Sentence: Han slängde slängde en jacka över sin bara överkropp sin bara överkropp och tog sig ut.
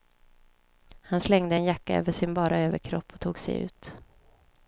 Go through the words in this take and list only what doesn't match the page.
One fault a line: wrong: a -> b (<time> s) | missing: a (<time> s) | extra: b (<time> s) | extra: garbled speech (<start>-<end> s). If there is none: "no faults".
missing: slängde (1.5 s)
missing: sin bara överkropp (3.1 s)